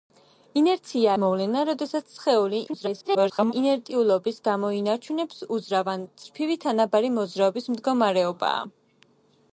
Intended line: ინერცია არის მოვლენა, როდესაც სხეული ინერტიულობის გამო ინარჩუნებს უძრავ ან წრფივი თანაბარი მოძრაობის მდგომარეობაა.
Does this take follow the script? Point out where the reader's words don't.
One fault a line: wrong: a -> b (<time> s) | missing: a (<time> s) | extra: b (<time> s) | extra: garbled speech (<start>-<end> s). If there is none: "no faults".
missing: არის (1.1 s)
extra: garbled speech (2.7-3.5 s)